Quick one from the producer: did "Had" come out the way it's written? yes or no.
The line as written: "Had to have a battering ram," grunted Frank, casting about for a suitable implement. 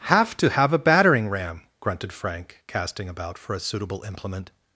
no